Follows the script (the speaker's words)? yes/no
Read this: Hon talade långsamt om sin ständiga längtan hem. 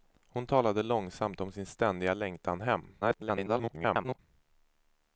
no